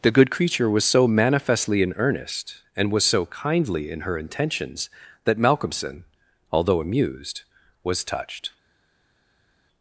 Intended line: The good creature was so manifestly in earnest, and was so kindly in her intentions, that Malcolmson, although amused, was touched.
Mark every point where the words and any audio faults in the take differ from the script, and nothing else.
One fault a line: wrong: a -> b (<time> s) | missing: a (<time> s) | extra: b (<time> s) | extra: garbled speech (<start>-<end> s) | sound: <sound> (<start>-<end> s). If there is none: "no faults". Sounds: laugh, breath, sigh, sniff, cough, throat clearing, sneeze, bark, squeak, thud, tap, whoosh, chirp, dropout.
no faults